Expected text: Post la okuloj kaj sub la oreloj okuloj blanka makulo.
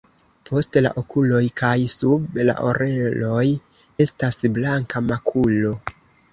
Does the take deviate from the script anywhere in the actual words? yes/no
yes